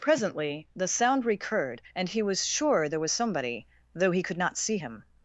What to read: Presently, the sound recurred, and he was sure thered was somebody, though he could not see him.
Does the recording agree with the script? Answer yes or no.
no